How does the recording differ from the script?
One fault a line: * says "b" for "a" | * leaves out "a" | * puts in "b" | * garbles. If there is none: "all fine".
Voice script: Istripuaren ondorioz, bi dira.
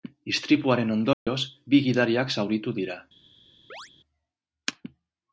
* puts in "gidariak zauritu"